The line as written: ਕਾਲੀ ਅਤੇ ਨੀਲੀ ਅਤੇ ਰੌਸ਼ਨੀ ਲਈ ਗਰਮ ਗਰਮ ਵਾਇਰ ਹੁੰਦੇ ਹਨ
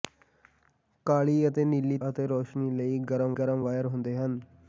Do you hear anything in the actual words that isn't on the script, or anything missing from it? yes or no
no